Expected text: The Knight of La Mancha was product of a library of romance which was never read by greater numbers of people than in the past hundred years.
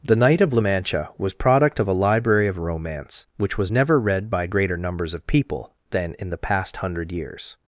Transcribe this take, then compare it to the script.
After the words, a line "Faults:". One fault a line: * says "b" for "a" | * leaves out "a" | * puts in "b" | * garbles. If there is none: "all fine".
The Knight of La Mancha was product of a library of romance which was never read by greater numbers of people than in the past hundred years.
Faults:
all fine